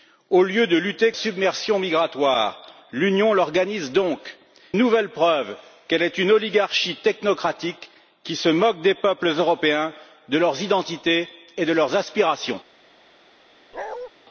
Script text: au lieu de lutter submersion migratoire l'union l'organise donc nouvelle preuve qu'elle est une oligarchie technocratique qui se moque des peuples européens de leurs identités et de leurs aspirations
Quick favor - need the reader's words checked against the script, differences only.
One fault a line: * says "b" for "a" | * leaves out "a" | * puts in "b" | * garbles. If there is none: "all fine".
all fine